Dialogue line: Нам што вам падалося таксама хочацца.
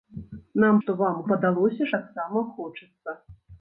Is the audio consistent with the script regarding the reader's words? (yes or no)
yes